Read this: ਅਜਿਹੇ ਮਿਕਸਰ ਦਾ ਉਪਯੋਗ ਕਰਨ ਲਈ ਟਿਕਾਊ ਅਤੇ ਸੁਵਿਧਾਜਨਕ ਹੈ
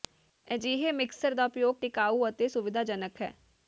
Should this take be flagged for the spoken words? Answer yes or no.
yes